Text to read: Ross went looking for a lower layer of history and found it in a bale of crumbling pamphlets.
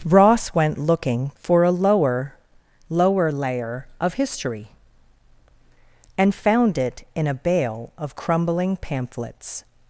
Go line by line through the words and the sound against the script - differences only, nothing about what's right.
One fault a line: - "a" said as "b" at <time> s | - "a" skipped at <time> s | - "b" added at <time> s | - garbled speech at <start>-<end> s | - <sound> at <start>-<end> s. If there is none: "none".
- "lower" added at 2.9 s